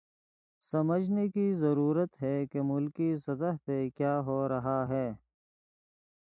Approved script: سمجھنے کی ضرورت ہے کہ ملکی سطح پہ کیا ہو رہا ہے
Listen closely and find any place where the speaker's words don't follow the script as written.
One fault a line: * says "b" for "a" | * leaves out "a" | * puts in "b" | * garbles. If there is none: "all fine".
all fine